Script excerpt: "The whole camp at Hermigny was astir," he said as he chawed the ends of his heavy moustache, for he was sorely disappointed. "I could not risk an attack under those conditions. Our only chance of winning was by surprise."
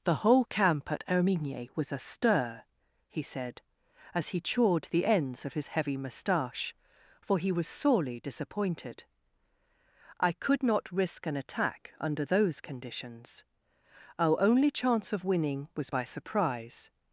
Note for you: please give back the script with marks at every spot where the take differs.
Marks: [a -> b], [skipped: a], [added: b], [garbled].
"The whole camp at Hermigny was astir," he said as he chawed the ends of his heavy moustache, for he was sorely disappointed. "I could not risk an attack under those conditions. Our only chance of winning was by surprise."